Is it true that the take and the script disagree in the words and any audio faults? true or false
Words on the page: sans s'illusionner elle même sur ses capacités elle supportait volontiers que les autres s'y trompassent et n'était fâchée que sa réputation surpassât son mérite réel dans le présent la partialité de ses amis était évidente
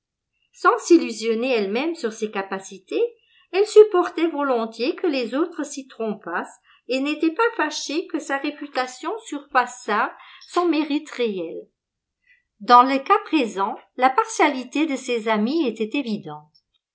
true